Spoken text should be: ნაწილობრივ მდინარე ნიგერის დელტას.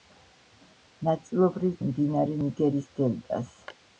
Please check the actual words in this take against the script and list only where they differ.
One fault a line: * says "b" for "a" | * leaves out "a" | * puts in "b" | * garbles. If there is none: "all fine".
all fine